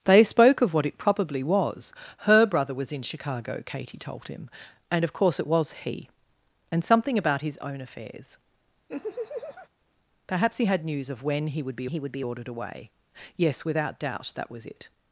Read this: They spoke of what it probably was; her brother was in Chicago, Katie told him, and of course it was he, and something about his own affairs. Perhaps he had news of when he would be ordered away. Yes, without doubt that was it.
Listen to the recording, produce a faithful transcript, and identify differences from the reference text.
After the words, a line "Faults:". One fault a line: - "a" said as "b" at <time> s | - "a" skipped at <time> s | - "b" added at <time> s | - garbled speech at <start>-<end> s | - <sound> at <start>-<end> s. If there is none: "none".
They spoke of what it probably was; her brother was in Chicago, Katie told him, and of course it was he, and something about his own affairs. Perhaps he had news of when he would be he would be ordered away. Yes, without doubt that was it.
Faults:
- laugh at 8.9-9.7 s
- "he would be" added at 11.8 s